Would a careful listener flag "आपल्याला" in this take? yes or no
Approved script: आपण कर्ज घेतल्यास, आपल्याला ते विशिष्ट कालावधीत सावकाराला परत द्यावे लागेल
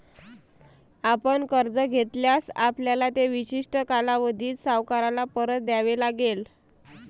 no